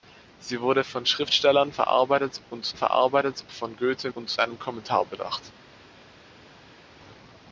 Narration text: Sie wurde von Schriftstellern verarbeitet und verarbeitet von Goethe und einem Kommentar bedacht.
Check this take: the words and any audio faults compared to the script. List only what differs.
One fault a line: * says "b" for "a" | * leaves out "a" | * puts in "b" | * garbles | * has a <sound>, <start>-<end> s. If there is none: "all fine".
all fine